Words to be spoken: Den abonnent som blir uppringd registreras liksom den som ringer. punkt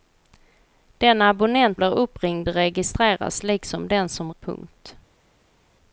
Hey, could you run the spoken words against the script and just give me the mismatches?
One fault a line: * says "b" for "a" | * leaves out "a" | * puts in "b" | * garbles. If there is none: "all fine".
* leaves out "som"
* leaves out "ringer"